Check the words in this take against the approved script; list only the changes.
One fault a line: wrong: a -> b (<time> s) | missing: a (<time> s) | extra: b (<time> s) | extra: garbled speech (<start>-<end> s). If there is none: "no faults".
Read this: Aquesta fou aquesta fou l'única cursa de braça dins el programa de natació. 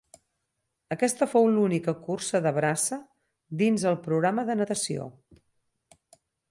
missing: aquesta fou (1.5 s)